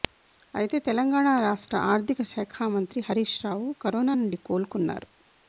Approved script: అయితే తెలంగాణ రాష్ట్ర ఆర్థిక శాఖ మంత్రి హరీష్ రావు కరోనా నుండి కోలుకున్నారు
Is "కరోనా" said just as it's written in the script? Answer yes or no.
yes